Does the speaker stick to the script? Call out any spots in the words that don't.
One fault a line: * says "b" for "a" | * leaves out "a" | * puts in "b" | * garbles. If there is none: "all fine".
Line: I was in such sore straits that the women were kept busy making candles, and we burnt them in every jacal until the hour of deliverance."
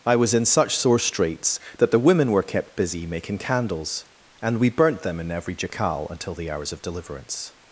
* says "hours" for "hour"